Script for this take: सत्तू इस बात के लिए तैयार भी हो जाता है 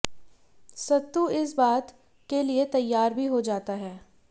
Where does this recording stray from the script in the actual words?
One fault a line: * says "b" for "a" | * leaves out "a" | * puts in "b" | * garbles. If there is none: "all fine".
all fine